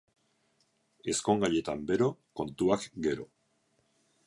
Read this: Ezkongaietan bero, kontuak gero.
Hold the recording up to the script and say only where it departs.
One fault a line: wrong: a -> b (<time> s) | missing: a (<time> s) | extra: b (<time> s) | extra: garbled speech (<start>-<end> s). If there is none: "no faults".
no faults